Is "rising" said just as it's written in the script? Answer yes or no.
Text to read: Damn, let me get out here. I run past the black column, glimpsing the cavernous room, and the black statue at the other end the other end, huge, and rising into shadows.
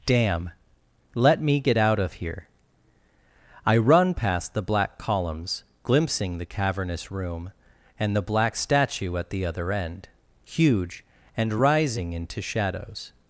yes